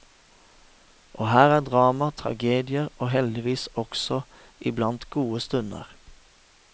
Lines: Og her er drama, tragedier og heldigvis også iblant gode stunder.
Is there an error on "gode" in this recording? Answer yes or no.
no